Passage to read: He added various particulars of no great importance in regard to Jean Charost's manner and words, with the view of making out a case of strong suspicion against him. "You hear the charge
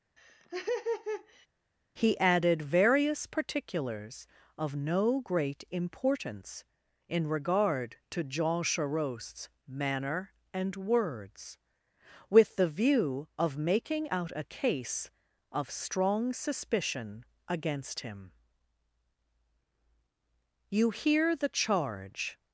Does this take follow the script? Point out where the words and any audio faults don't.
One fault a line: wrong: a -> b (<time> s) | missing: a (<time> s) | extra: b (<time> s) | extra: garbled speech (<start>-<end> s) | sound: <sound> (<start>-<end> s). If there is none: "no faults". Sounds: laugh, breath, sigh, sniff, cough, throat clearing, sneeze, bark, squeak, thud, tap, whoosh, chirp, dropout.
sound: laugh (0.2-1.5 s)